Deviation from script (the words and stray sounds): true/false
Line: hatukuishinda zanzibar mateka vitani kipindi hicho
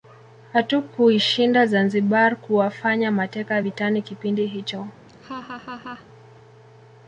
true